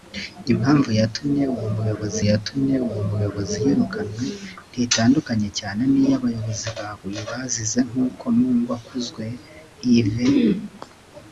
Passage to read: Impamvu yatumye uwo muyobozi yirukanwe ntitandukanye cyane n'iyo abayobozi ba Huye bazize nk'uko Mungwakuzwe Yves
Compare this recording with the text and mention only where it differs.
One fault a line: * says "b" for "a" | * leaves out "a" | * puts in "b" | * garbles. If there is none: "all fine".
* puts in "yatumye uwo muyobozi"